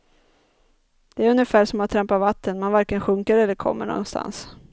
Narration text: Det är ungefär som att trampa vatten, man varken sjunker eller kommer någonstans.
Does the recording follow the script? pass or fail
pass